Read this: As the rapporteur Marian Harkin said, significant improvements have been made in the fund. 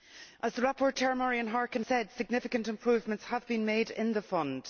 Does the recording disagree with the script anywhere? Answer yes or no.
no